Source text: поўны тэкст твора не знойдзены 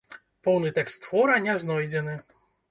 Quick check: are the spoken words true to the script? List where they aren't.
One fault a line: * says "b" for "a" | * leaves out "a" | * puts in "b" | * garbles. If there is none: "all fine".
all fine